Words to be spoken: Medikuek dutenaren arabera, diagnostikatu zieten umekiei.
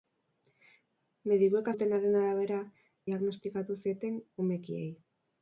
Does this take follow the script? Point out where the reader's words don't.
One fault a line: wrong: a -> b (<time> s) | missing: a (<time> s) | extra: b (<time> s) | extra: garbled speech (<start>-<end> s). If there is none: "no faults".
no faults